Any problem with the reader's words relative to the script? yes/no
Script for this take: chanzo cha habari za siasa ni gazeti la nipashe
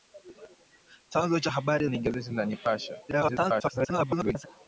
yes